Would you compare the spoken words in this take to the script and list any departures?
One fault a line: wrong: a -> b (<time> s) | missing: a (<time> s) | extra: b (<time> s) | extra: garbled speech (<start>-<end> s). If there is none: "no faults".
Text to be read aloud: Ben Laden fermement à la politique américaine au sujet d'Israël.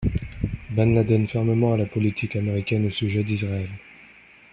no faults